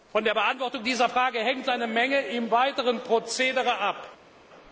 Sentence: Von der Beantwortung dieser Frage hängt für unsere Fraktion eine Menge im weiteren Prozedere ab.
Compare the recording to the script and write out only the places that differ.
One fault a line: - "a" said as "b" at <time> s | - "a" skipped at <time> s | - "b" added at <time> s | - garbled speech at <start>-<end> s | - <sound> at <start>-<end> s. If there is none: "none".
- "für unsere Fraktion" skipped at 1.7 s